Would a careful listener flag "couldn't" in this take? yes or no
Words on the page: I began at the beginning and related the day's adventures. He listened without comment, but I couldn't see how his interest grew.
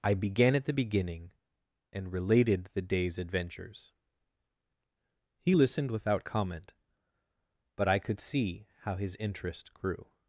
yes